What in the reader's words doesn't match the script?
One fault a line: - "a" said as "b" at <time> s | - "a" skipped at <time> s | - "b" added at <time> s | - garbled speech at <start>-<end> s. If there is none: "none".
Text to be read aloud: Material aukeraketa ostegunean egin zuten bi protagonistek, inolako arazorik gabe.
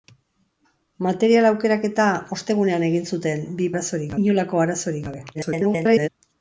- "protagonistek" said as "arazorik" at 3.7 s
- garbled speech at 5.3-6.1 s